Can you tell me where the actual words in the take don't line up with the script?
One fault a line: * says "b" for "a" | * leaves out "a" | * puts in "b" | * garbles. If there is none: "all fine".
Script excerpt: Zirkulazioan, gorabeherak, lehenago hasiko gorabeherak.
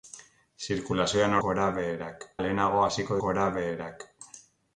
all fine